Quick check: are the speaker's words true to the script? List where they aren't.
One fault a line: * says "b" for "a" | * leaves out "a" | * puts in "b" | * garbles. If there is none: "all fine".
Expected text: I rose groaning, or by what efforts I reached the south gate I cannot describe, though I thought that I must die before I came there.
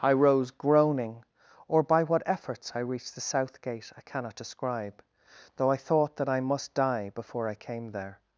all fine